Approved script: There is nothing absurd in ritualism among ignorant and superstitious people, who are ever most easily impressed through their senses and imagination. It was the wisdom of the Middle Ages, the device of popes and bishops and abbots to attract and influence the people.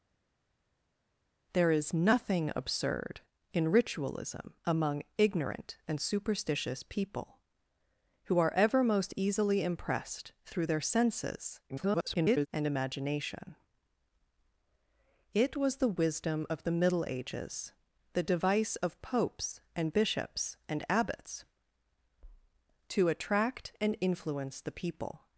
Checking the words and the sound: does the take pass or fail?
fail